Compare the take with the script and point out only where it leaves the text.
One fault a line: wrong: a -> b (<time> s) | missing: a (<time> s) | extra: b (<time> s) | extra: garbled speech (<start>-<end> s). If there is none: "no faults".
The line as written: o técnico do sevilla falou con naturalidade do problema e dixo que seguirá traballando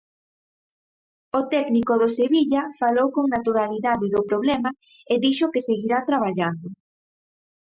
no faults